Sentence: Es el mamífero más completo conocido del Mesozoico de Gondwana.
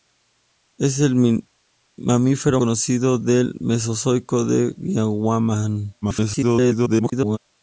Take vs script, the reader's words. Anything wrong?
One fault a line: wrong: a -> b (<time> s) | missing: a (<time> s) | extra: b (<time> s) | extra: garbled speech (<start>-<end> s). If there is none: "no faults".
missing: más completo (2.6 s)
extra: garbled speech (6.0-7.4 s)